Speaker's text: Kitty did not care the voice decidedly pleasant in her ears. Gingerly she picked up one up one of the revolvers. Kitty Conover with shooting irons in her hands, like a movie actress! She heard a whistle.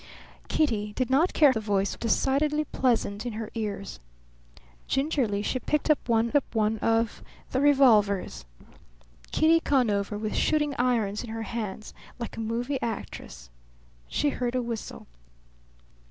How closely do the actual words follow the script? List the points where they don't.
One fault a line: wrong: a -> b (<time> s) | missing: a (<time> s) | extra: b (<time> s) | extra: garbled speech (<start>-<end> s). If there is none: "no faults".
no faults